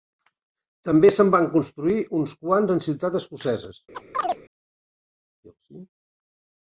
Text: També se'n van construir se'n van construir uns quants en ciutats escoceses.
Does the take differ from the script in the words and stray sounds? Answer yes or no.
yes